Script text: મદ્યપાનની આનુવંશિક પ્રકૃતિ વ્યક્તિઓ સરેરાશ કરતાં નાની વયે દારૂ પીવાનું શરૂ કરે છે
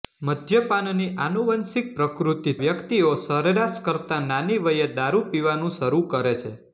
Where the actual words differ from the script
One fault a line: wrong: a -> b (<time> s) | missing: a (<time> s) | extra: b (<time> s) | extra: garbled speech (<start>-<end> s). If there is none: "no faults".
no faults